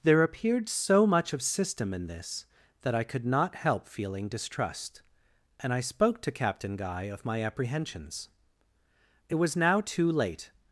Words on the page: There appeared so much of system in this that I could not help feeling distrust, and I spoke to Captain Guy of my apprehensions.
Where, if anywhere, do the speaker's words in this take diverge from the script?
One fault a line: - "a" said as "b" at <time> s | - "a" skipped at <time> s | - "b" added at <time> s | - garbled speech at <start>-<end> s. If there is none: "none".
- "It was now too late" added at 9.3 s